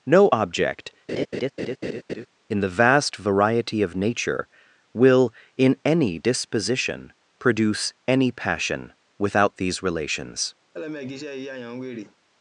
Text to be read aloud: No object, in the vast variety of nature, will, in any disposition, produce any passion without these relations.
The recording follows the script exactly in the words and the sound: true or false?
false